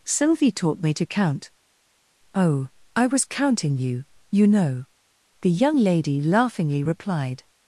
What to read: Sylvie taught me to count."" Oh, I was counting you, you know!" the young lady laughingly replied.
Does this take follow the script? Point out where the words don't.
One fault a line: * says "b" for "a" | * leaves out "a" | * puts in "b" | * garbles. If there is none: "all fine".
all fine